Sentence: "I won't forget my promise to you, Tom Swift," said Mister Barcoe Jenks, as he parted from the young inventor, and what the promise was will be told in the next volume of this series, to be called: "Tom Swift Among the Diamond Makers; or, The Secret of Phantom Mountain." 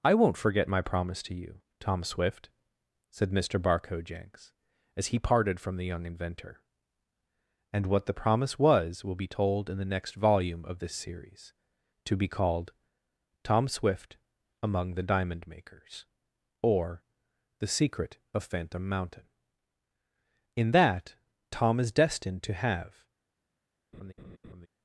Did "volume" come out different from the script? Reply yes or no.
no